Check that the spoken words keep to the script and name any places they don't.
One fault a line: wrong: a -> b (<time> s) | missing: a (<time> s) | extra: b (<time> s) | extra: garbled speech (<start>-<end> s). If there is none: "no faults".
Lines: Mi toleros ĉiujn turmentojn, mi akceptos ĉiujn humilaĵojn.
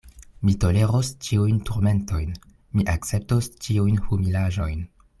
no faults